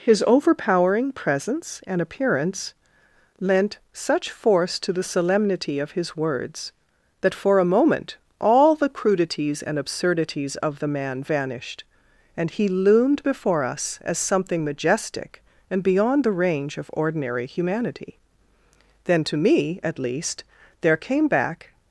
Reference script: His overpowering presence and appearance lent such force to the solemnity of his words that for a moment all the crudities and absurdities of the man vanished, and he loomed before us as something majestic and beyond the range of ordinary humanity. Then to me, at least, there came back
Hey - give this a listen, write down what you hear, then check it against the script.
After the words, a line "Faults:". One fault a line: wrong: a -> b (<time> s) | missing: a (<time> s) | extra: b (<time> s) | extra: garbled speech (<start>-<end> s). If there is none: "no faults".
His overpowering presence and appearance lent such force to the solemnity of his words that for a moment all the crudities and absurdities of the man vanished, and he loomed before us as something majestic and beyond the range of ordinary humanity. Then to me, at least, there came back
Faults:
no faults